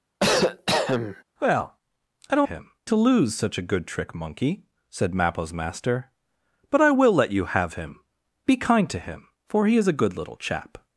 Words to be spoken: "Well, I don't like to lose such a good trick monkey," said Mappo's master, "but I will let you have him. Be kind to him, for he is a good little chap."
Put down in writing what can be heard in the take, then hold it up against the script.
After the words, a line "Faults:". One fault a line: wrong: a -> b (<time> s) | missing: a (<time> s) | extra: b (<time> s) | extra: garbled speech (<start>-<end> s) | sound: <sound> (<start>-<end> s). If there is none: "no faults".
"Well, I don't him to lose such a good trick monkey," said Mappo's master, "but I will let you have him. Be kind to him, for he is a good little chap."
Faults:
sound: cough (0.2-1.2 s)
wrong: like -> him (2.4 s)